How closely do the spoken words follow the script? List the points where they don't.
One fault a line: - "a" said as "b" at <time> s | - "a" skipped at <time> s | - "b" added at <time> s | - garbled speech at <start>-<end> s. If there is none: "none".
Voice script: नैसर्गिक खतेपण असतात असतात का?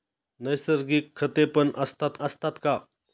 none